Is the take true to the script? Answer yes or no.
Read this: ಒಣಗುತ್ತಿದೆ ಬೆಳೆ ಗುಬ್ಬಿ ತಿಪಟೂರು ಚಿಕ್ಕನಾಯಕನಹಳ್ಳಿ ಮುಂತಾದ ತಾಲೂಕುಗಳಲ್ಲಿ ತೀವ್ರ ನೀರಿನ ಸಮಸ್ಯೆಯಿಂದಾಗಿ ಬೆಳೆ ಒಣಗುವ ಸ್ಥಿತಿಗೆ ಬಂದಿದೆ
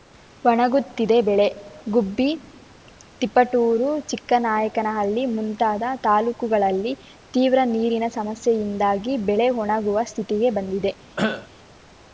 yes